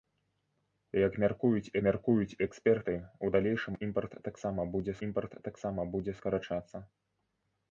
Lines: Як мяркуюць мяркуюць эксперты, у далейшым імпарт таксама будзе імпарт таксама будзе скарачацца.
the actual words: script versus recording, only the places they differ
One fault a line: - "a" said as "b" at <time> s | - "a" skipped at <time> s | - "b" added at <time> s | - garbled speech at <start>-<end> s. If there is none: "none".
none